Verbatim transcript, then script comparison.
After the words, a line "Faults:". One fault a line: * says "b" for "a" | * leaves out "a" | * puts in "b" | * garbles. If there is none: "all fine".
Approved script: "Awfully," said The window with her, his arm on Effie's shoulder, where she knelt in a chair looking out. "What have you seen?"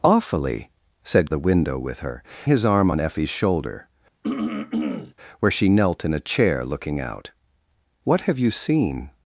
"Awfully," said The window with her, his arm on Effie's shoulder, where she knelt in a chair looking out. "What have you seen?"
Faults:
all fine